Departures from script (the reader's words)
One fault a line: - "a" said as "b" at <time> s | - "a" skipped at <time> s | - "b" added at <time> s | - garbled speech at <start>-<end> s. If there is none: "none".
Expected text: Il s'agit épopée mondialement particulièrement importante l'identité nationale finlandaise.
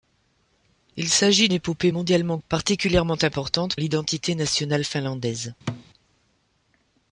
none